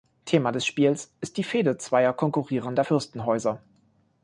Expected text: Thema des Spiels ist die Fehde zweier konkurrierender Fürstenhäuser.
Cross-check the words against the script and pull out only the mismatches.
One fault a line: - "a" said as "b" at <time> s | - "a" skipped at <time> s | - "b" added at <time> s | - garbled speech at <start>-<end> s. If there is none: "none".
none